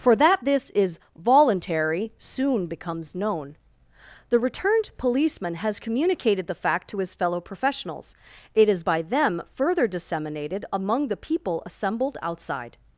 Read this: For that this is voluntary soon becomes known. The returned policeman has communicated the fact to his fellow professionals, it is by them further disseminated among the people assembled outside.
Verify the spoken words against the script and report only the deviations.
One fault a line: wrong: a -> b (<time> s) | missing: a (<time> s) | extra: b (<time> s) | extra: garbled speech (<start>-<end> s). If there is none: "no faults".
no faults